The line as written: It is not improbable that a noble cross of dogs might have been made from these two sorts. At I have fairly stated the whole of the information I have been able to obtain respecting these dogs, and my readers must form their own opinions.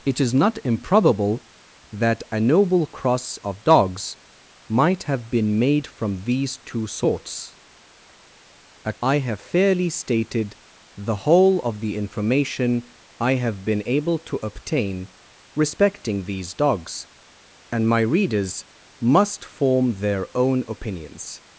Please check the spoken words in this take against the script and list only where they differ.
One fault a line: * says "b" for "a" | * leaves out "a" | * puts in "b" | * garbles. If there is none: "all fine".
all fine